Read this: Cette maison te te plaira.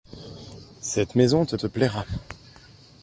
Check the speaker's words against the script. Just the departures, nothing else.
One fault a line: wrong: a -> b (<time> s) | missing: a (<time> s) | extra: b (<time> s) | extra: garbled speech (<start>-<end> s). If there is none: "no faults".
no faults